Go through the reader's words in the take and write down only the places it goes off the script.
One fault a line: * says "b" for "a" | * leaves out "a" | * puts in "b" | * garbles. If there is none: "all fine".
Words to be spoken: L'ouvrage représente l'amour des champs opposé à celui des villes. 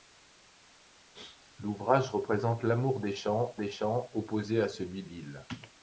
* puts in "des champs"
* leaves out "des"